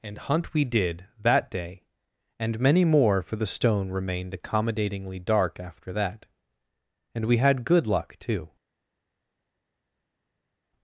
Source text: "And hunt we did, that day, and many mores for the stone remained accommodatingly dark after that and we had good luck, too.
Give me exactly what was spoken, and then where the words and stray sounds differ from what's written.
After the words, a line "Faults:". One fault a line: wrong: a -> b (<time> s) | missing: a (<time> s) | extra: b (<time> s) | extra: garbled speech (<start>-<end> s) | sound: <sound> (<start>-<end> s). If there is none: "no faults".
"And hunt we did, that day, and many more for the stone remained accommodatingly dark after that and we had good luck, too.
Faults:
wrong: mores -> more (2.9 s)